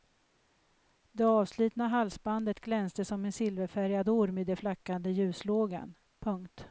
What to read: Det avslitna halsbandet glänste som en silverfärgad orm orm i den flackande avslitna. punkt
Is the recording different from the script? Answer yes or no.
yes